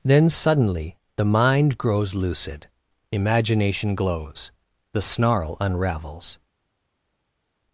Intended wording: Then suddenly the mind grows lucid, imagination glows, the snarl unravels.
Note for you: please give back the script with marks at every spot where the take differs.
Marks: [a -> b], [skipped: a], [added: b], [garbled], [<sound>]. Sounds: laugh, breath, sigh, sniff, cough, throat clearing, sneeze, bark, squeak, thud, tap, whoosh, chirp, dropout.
Then suddenly the mind grows lucid, imagination glows, the snarl unravels.